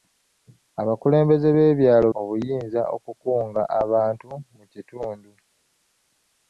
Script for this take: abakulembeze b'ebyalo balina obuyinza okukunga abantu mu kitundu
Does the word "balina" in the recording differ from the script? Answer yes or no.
yes